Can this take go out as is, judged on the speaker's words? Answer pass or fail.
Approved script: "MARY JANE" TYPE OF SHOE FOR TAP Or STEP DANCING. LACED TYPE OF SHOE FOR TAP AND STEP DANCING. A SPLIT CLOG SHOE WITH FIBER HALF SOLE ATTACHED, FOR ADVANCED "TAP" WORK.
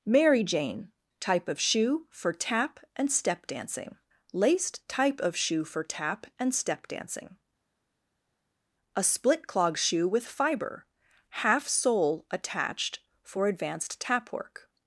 fail